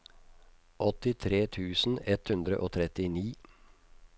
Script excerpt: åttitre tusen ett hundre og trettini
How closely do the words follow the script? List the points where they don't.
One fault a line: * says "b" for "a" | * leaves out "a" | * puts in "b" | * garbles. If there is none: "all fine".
all fine